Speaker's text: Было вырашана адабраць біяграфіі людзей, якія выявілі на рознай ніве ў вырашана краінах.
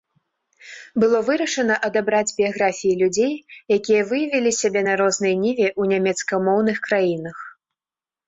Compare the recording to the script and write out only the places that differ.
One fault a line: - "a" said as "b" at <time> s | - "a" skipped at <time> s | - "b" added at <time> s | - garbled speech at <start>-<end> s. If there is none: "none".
- "сябе" added at 4.6 s
- "вырашана" said as "нямецкамоўных" at 6.0 s